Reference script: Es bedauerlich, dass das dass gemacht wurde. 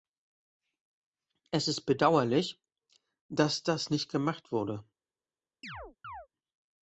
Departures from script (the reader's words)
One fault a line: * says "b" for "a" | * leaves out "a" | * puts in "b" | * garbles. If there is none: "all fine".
* puts in "ist"
* says "nicht" for "dass"